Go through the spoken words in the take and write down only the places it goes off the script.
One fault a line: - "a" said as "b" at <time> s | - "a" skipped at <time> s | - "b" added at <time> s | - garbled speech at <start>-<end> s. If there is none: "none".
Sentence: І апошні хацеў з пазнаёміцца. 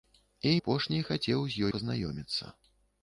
none